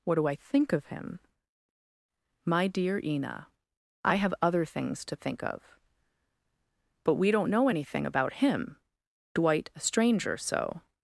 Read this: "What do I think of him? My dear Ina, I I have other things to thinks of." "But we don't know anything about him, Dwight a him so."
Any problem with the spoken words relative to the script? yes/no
yes